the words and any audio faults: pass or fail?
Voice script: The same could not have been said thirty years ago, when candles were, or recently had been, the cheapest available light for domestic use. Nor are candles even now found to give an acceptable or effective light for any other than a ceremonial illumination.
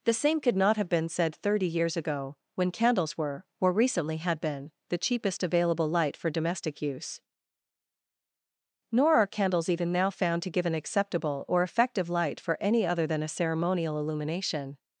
pass